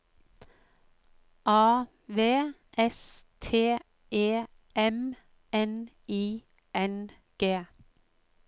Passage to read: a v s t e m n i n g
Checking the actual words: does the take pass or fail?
pass